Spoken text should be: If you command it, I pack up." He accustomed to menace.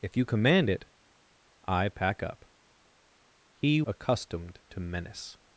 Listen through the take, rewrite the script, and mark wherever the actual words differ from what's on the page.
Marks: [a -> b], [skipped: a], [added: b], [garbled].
If you command it, I pack up." He accustomed to menace.